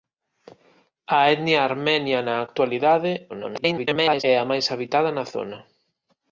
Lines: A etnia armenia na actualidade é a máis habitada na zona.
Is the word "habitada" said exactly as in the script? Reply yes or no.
yes